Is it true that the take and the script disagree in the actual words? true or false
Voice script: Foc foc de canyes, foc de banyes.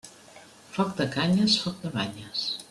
true